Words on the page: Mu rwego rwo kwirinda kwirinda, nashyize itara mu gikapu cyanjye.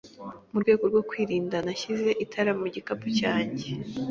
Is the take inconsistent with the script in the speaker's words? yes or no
yes